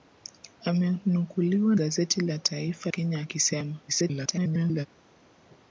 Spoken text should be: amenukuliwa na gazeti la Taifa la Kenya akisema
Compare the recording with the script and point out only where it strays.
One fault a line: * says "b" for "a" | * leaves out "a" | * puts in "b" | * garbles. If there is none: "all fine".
* leaves out "na"
* leaves out "la"
* garbles